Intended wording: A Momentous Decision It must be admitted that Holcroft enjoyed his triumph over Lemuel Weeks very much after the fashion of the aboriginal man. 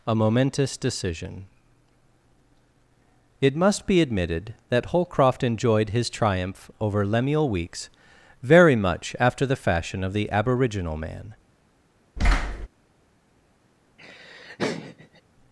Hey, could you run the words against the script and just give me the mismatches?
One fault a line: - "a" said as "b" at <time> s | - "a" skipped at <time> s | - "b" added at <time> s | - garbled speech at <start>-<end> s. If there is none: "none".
none